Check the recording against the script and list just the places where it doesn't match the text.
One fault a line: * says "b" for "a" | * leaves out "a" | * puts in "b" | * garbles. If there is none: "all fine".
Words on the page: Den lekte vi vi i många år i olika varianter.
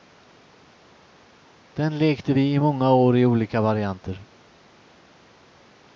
* leaves out "vi"